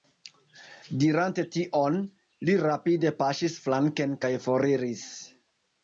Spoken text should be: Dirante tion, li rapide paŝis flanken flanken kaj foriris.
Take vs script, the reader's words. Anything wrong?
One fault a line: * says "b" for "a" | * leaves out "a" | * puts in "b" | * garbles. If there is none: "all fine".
* leaves out "flanken"